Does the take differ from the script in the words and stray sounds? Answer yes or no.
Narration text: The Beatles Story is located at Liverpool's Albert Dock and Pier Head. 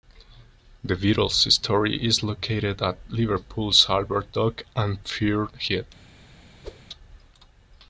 yes